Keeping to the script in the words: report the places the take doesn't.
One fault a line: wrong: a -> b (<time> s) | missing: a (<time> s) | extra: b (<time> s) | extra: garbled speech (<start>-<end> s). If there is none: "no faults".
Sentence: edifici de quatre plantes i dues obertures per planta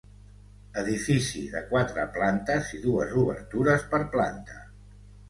no faults